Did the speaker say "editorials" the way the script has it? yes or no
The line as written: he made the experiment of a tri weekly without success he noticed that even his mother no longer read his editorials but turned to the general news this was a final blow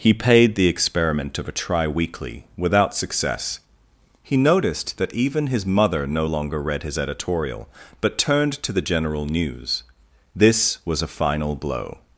no